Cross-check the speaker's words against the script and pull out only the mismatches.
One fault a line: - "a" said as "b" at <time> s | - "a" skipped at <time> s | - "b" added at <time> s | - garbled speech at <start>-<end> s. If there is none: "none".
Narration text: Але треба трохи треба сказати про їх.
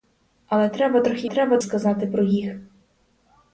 none